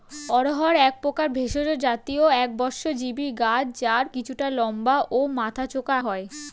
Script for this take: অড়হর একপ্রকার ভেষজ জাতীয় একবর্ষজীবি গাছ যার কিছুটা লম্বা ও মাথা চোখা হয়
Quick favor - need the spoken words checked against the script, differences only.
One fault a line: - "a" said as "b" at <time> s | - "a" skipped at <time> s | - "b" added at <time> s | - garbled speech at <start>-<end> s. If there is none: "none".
none